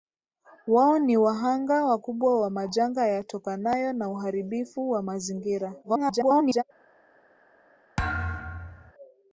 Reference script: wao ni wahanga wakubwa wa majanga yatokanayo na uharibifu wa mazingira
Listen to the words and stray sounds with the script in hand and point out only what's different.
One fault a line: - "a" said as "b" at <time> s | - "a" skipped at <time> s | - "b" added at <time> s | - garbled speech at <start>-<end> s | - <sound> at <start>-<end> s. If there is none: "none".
- garbled speech at 5.8-6.6 s
- thud at 8.0-8.9 s